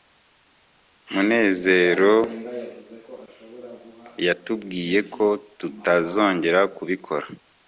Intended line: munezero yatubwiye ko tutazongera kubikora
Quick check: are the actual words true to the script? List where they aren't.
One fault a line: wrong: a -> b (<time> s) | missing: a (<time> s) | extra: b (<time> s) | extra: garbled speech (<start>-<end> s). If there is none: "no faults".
no faults